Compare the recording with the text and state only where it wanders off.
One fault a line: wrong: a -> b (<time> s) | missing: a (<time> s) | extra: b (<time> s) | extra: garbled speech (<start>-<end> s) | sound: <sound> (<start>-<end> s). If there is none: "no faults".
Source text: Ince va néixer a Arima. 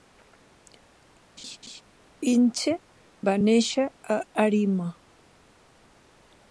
sound: laugh (1.4-1.8 s)